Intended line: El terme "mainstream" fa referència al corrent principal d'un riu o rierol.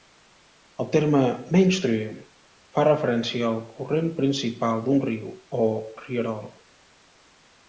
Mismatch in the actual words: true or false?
false